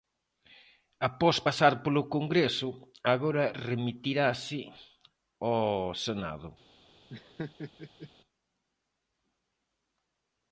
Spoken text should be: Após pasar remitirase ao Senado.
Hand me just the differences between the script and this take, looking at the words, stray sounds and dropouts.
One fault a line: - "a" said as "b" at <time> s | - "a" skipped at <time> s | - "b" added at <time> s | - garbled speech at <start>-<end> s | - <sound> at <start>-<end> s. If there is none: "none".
- "polo Congreso agora" added at 1.8 s
- laugh at 7.1-8.1 s